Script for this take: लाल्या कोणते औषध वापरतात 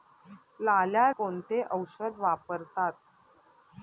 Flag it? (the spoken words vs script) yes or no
no